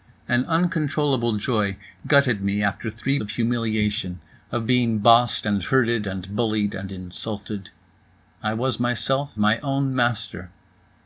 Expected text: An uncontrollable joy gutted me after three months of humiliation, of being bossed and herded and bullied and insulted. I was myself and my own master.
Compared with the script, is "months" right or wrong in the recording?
wrong